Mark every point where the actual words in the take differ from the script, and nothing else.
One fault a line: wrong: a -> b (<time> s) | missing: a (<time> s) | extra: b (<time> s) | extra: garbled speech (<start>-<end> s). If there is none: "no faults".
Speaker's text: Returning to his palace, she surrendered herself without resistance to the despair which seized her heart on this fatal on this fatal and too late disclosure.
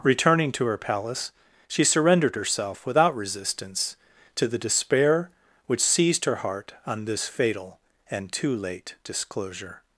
wrong: his -> her (0.7 s)
missing: on this fatal (7.8 s)